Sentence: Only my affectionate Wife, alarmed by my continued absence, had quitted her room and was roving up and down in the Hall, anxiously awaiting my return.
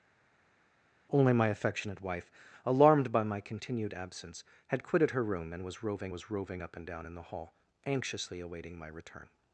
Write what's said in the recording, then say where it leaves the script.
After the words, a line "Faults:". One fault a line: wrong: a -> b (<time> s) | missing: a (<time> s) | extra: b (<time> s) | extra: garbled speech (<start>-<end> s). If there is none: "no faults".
Only my affectionate Wife, alarmed by my continued absence, had quitted her room and was roving was roving up and down in the Hall, anxiously awaiting my return.
Faults:
extra: was roving (6.1 s)